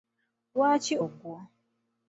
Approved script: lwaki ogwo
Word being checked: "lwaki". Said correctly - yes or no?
yes